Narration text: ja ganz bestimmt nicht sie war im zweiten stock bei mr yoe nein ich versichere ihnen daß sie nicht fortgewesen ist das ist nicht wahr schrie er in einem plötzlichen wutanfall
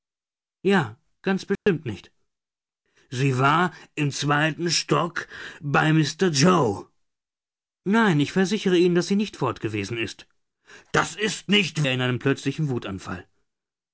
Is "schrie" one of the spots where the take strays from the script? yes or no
yes